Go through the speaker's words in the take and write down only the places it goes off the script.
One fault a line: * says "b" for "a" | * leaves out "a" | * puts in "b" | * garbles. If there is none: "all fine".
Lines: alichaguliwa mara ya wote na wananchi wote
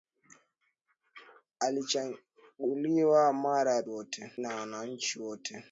all fine